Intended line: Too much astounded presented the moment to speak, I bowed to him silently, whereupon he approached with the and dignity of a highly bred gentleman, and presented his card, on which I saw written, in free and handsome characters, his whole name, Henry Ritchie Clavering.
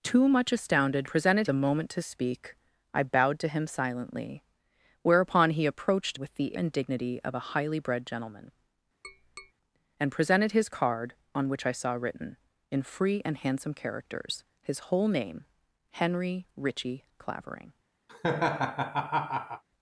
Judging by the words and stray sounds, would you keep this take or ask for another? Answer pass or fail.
fail